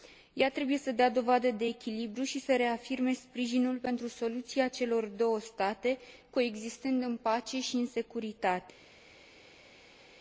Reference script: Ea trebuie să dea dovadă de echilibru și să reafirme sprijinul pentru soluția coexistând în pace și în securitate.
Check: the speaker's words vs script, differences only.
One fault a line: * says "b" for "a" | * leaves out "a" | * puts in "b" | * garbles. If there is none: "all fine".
* puts in "celor două state"